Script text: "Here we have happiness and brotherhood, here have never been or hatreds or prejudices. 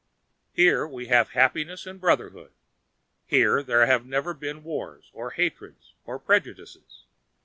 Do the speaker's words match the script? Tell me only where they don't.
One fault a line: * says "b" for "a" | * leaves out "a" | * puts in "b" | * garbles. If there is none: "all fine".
* puts in "there"
* puts in "wars"